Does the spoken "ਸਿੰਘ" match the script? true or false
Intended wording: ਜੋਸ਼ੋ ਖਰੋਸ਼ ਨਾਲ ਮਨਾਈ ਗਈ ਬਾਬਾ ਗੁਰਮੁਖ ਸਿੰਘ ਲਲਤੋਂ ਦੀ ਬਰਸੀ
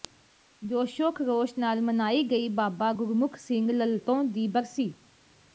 true